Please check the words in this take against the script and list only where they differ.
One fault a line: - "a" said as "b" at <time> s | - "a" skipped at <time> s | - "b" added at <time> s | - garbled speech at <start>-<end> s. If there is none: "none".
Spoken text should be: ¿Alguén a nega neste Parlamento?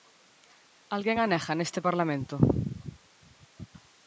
none